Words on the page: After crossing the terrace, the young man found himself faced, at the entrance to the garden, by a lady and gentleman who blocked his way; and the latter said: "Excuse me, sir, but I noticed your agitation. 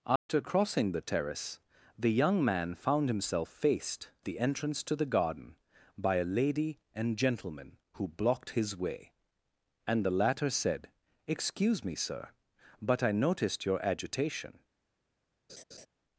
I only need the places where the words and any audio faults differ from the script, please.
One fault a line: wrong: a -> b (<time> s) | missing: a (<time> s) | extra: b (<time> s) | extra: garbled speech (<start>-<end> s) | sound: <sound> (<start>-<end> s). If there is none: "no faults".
sound: dropout (0.2-0.3 s)
missing: at (4.1 s)
sound: laugh (15.5-15.9 s)